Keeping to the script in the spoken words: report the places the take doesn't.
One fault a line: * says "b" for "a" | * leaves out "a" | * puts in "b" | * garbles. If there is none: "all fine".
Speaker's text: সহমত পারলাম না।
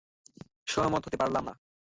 * puts in "হতে"